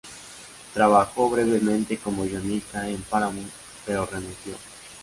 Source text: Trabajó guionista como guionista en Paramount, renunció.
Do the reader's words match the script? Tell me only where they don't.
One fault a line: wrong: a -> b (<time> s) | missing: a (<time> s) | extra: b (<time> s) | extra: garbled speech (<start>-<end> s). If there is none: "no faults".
wrong: guionista -> brevemente (1.3 s)
extra: pero (3.9 s)